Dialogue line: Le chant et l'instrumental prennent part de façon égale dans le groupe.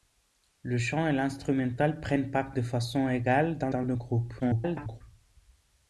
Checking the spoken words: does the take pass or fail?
fail